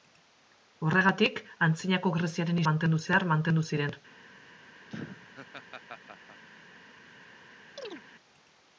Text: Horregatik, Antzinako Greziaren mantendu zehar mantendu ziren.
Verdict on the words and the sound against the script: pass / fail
fail